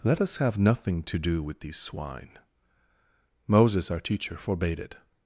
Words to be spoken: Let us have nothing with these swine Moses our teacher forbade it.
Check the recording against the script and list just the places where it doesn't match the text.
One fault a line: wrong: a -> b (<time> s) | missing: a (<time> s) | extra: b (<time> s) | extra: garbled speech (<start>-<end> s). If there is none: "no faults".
extra: to do (1.0 s)